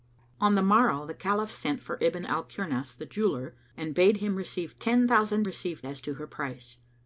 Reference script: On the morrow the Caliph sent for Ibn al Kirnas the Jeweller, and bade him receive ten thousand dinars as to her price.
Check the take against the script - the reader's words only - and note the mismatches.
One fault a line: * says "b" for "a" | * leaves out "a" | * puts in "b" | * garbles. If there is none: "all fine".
* says "receive" for "dinars"